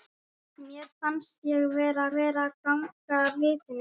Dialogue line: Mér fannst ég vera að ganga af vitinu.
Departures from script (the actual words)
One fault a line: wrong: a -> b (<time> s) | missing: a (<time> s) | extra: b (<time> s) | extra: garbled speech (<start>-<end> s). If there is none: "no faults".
extra: vera (2.2 s)